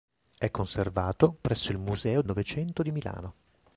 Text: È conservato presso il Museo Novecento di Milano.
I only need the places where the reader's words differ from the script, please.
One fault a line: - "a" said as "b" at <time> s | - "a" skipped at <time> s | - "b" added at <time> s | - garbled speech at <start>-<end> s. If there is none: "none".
none